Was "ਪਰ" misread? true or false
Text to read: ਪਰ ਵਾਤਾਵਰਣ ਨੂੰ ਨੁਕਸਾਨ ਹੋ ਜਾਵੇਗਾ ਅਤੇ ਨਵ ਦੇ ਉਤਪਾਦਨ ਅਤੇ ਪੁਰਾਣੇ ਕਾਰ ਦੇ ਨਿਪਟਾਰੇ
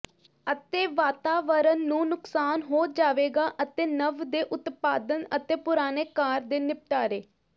true